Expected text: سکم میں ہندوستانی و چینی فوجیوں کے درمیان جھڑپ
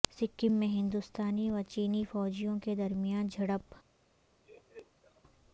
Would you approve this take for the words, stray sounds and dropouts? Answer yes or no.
no